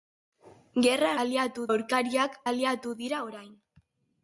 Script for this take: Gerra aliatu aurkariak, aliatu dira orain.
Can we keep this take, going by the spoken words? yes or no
yes